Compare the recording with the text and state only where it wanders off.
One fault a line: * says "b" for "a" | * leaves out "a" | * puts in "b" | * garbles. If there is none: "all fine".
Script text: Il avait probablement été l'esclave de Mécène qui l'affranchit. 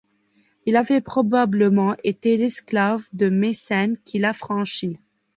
all fine